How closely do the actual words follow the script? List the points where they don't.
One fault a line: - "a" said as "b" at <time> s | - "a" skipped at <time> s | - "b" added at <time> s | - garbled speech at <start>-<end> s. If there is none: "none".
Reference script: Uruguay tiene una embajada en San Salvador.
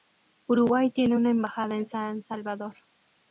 none